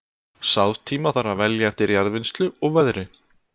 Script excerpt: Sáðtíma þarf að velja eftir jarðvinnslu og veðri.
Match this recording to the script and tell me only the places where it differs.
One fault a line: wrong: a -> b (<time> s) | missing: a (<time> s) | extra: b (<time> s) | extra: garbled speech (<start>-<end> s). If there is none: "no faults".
no faults